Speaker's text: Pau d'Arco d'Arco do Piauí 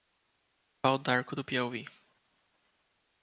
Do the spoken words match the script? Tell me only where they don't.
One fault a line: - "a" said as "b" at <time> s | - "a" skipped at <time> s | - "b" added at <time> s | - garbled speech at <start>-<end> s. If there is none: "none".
- "d'Arco" skipped at 1.4 s